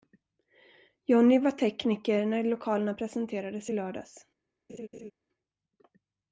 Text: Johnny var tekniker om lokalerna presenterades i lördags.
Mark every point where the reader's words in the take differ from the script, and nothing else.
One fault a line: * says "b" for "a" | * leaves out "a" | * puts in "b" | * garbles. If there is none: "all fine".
* says "när" for "om"